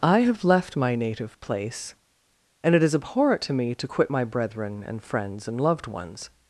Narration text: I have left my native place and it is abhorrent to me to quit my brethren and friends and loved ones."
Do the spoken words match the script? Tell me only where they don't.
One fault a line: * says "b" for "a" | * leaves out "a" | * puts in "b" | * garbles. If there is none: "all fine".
all fine